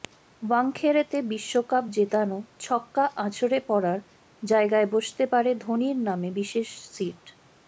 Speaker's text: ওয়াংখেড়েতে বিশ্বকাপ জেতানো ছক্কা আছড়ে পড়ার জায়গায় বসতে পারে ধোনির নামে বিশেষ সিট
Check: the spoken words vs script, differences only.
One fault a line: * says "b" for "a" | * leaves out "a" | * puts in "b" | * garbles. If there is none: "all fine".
all fine